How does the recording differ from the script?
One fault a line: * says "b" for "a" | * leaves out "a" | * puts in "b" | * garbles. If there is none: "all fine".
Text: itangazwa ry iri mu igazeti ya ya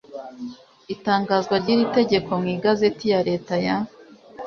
* puts in "tegeko"
* puts in "leta"